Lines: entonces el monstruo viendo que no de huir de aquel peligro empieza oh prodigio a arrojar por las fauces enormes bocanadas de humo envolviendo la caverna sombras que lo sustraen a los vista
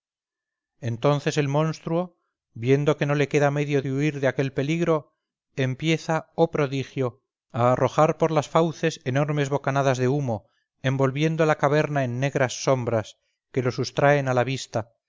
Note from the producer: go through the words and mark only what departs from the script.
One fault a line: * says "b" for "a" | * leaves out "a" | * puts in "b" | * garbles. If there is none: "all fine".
* puts in "le queda medio"
* puts in "en negras"
* says "la" for "los"